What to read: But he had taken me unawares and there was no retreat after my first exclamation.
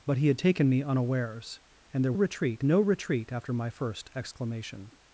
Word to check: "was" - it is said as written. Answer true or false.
false